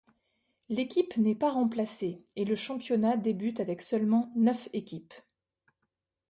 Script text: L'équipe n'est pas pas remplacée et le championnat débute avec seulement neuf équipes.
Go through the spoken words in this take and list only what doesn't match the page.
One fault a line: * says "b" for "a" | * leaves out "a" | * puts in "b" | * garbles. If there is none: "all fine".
* leaves out "pas"